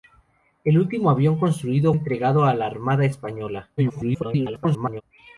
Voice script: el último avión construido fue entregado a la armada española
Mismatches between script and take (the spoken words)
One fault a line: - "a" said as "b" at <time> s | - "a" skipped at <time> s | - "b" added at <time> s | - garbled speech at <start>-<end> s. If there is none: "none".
- "fue" skipped at 1.9 s
- garbled speech at 3.8-5.0 s